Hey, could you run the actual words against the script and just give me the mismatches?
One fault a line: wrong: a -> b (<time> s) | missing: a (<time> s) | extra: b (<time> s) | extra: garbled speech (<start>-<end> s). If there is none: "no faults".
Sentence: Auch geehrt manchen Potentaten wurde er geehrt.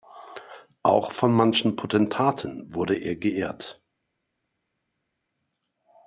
wrong: geehrt -> von (1.1 s)